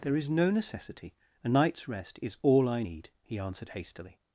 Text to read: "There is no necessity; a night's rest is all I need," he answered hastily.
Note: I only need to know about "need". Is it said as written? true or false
true